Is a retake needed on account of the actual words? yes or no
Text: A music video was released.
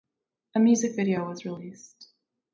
no